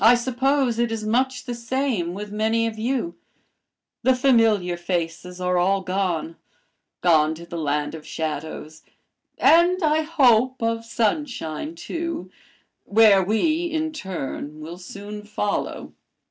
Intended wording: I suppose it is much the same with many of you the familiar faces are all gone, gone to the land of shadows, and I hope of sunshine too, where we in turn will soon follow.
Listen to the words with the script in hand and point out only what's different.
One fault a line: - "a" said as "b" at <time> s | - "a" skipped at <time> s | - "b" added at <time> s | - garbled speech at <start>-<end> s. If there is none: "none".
none